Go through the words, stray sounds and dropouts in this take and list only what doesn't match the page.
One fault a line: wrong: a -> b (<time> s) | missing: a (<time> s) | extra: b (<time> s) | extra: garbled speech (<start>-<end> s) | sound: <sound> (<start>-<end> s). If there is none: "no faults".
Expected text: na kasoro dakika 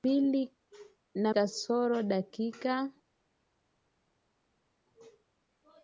no faults